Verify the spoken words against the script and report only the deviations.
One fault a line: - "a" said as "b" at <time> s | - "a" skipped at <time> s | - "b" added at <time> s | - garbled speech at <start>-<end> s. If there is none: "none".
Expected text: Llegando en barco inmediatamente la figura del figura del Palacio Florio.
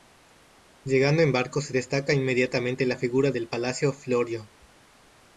- "se destaca" added at 1.6 s
- "figura del" skipped at 3.5 s